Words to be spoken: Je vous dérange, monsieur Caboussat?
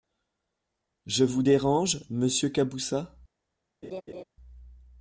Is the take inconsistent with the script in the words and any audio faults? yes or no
yes